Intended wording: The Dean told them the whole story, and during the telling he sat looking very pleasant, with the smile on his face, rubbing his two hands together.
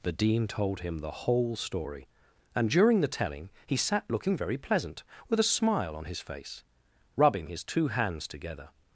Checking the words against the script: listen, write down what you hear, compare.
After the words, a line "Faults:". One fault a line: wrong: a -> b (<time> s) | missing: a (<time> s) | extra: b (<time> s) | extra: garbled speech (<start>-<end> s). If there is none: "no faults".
The Dean told him the whole story, and during the telling he sat looking very pleasant, with a smile on his face, rubbing his two hands together.
Faults:
wrong: them -> him (0.8 s)
wrong: the -> a (5.4 s)